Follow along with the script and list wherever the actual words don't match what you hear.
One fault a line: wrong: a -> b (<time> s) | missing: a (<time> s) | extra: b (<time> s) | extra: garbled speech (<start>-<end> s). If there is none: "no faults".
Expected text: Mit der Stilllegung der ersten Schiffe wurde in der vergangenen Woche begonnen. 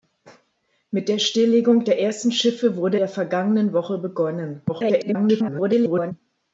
missing: in (3.0 s)
extra: garbled speech (4.7-6.1 s)